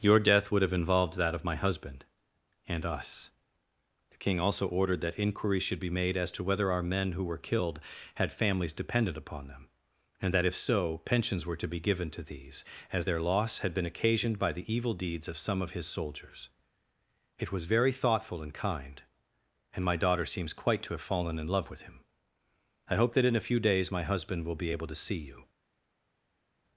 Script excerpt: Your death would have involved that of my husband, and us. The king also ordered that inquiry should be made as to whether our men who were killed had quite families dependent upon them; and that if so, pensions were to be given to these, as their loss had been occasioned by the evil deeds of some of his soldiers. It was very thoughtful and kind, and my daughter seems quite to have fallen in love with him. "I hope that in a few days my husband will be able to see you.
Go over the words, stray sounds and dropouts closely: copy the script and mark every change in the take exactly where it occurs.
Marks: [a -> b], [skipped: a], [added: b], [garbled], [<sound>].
Your death would have involved that of my husband, and us. The king also ordered that inquiry should be made as to whether our men who were killed had [skipped: quite] families dependent upon them; and that if so, pensions were to be given to these, as their loss had been occasioned by the evil deeds of some of his soldiers. It was very thoughtful and kind, and my daughter seems quite to have fallen in love with him. "I hope that in a few days my husband will be able to see you.